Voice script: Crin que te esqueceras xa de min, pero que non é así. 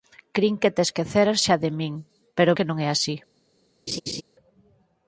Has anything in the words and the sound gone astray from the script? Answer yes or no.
yes